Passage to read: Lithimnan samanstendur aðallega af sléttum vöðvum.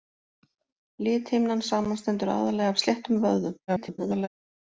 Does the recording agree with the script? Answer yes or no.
no